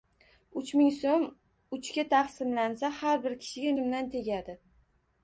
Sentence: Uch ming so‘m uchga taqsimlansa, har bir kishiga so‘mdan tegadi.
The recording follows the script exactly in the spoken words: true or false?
true